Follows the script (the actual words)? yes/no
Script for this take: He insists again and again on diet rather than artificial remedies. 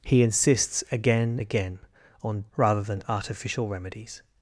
no